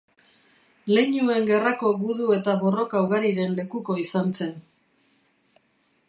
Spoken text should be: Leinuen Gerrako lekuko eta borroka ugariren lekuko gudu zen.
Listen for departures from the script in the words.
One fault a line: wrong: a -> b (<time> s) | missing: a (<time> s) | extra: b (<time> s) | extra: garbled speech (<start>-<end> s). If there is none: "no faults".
wrong: lekuko -> gudu (2.0 s)
wrong: gudu -> izan (4.0 s)